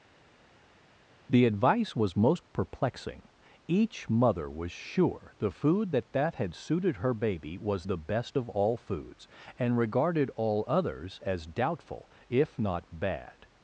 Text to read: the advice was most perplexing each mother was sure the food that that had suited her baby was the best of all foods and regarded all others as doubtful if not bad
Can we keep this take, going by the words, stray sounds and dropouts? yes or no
yes